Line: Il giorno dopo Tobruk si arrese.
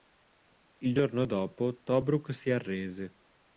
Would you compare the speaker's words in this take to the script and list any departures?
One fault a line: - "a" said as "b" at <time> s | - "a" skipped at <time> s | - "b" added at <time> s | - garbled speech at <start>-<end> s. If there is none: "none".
none